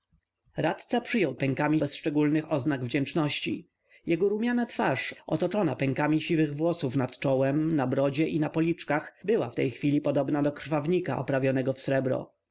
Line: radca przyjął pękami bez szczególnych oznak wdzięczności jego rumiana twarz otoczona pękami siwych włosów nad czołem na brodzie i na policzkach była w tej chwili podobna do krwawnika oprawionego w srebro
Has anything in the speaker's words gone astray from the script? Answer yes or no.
no